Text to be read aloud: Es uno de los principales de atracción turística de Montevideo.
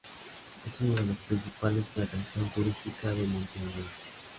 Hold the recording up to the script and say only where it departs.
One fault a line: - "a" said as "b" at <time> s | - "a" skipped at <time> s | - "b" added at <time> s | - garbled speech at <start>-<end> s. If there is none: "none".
none